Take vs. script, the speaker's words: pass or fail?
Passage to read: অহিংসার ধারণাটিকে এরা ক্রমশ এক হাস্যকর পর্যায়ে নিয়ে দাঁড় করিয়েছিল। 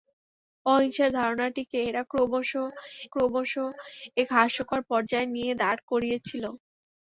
fail